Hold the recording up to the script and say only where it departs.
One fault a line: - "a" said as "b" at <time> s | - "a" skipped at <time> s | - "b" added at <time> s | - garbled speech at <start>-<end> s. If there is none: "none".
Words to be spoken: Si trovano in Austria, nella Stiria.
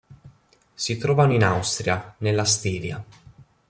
none